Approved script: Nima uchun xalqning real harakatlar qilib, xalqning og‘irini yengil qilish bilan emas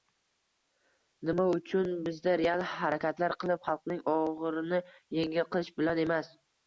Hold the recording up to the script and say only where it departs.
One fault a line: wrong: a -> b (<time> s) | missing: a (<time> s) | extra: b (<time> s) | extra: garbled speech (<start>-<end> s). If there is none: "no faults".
wrong: xalqning -> bizda (2.1 s)